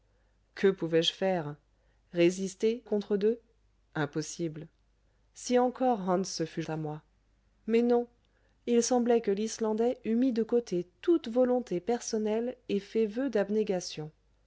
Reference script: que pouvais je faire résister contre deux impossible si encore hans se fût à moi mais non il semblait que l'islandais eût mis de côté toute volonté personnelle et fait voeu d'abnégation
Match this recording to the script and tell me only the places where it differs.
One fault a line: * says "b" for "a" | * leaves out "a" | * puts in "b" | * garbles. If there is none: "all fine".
all fine